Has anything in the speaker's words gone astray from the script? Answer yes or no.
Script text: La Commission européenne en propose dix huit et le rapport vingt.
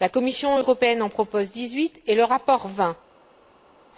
no